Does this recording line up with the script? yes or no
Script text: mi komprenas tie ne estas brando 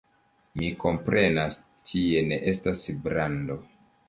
yes